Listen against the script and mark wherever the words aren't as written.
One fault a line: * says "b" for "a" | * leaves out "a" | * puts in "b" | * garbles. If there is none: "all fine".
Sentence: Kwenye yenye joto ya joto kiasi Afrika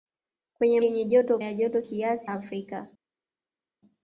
all fine